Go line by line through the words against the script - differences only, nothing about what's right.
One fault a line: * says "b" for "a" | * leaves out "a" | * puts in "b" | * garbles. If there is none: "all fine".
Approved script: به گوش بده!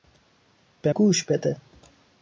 all fine